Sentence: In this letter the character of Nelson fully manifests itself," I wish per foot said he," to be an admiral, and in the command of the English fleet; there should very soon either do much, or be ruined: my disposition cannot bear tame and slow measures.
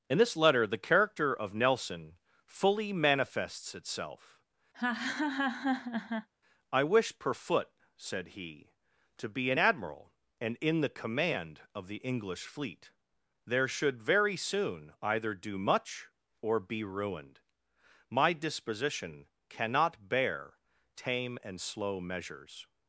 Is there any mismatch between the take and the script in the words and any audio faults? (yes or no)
yes